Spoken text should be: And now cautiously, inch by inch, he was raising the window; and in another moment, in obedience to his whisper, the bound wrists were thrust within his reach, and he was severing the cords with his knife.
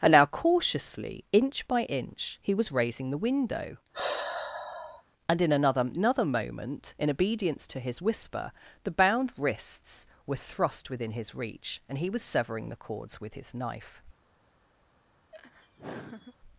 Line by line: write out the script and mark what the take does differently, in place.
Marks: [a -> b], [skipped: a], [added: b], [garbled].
And now cautiously, inch by inch, he was raising the window; and in another [added: another] moment, in obedience to his whisper, the bound wrists were thrust within his reach, and he was severing the cords with his knife.